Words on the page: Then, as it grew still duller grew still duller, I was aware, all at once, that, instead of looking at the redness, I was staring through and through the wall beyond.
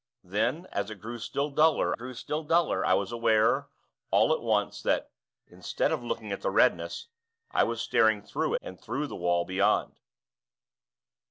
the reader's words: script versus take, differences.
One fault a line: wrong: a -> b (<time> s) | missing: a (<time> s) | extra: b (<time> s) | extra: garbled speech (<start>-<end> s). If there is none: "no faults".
no faults